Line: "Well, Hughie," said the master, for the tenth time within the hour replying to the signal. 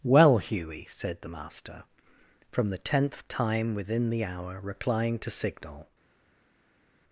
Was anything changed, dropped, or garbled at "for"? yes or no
yes